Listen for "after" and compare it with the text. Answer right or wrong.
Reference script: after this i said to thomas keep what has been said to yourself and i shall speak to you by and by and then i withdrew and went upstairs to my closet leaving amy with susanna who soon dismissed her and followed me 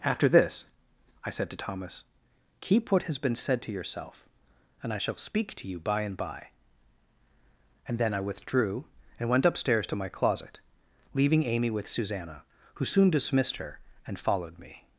right